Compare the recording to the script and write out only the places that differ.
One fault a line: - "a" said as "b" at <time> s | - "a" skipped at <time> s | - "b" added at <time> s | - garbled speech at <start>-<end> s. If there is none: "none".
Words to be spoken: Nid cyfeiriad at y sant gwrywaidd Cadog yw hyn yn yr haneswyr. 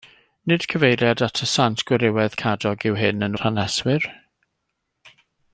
none